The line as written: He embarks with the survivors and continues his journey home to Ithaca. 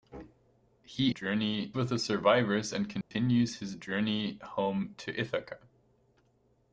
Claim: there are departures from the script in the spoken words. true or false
true